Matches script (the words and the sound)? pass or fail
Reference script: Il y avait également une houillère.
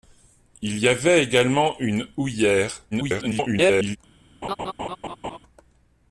fail